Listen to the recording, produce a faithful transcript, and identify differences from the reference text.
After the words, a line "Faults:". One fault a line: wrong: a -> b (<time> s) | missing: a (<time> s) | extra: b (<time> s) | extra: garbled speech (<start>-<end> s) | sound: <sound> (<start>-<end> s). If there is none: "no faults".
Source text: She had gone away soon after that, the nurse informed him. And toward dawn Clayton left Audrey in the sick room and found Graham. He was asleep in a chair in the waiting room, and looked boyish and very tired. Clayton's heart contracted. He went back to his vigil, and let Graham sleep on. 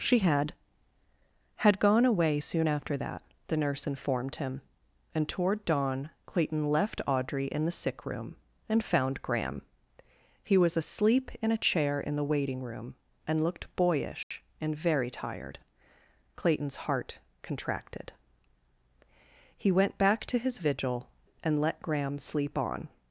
She had had gone away soon after that, the nurse informed him. And toward dawn Clayton left Audrey in the sick room and found Graham. He was asleep in a chair in the waiting room, and looked boyish and very tired. Clayton's heart contracted. He went back to his vigil, and let Graham sleep on.
Faults:
extra: had (1.6 s)
sound: dropout (14.2-14.3 s)